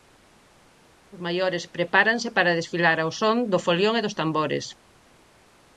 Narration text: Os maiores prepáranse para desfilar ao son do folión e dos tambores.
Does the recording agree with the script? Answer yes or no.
yes